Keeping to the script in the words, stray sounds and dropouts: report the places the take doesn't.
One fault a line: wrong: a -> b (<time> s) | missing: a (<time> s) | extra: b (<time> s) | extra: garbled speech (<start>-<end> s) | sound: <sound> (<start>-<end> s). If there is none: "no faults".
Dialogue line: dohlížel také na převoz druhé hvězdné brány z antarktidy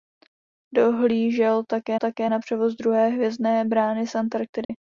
extra: také (1.9 s)
sound: dropout (4.6-4.7 s)